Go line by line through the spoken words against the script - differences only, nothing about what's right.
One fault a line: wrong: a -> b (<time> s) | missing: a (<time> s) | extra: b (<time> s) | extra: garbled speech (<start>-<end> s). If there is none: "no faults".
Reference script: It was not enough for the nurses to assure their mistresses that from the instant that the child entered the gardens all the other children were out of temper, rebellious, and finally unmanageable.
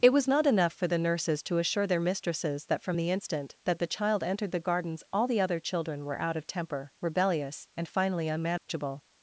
no faults